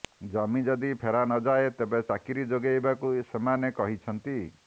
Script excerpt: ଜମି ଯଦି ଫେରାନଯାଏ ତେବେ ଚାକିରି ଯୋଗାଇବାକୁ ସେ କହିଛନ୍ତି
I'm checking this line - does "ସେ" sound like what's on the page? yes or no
no